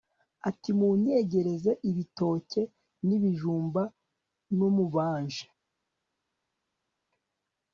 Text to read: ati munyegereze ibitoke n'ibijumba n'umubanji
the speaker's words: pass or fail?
pass